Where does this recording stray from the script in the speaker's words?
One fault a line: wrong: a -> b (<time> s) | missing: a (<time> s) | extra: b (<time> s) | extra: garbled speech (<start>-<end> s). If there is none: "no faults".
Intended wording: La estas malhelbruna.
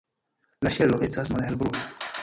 extra: ŝelo (0.8 s)